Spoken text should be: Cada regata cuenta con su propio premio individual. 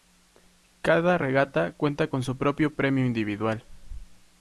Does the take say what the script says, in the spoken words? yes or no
yes